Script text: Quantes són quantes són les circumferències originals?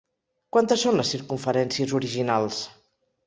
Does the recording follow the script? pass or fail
fail